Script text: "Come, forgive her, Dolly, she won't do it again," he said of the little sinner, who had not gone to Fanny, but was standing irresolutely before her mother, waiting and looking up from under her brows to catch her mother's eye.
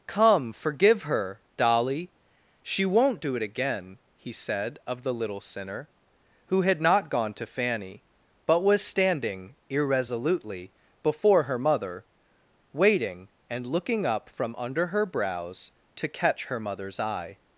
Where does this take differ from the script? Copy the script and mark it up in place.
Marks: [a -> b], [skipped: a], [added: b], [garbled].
"Come, forgive her, Dolly, she won't do it again," he said of the little sinner, who had not gone to Fanny, but was standing irresolutely before her mother, waiting and looking up from under her brows to catch her mother's eye.